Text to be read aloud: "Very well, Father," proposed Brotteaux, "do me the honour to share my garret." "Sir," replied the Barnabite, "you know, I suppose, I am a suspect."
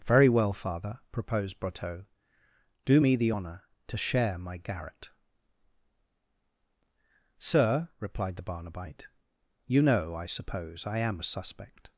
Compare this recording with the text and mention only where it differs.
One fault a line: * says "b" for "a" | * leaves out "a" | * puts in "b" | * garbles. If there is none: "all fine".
all fine